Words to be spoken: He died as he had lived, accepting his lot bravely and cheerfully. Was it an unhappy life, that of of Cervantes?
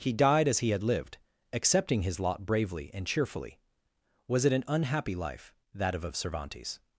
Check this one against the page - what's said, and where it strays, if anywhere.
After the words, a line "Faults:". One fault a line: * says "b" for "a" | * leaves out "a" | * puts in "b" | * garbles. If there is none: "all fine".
He died as he had lived, accepting his lot bravely and cheerfully. Was it an unhappy life, that of of Cervantes?
Faults:
all fine